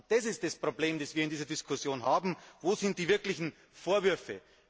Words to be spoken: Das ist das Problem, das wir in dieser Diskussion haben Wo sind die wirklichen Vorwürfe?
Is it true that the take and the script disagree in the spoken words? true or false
false